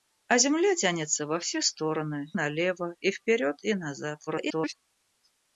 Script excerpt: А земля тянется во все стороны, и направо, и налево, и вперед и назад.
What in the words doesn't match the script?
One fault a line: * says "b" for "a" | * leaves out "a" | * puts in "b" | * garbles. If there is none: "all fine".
* leaves out "и направо и"
* garbles